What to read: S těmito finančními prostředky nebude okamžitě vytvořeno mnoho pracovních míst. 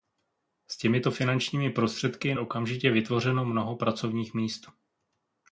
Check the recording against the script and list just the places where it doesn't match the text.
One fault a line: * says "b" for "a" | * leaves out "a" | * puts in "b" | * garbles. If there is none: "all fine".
* leaves out "nebude"